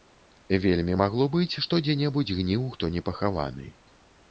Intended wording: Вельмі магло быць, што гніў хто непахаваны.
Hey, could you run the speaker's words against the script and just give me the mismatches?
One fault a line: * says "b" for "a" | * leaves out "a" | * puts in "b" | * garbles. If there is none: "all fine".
* puts in "дзе небудзь"